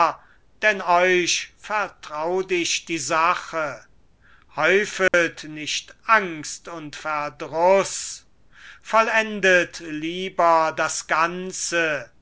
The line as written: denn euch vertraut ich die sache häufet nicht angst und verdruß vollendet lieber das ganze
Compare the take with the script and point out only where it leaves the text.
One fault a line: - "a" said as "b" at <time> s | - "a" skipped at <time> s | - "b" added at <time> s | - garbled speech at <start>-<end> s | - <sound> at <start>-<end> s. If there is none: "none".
- dropout at 5.1-5.1 s